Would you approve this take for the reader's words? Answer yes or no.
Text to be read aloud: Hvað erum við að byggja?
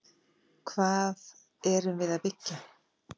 yes